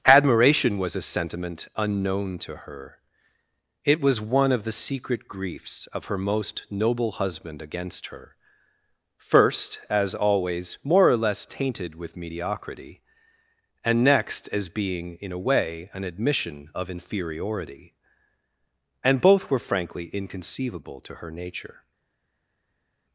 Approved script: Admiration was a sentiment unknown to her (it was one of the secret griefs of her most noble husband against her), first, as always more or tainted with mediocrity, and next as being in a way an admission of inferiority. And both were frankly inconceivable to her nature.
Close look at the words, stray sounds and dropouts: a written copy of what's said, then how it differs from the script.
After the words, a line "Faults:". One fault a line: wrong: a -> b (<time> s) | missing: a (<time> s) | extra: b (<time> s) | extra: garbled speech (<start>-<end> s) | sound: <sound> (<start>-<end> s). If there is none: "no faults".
Admiration was a sentiment unknown to her (it was one of the secret griefs of her most noble husband against her), first, as always more or less tainted with mediocrity, and next as being in a way an admission of inferiority. And both were frankly inconceivable to her nature.
Faults:
extra: less (11.2 s)